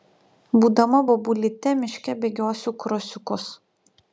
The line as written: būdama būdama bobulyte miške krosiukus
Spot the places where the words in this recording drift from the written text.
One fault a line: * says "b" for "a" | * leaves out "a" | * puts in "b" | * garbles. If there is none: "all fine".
* leaves out "būdama"
* puts in "bėgiosiu"